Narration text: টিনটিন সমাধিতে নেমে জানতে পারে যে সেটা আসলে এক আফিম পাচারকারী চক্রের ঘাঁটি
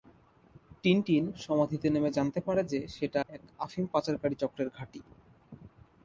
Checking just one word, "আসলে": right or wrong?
wrong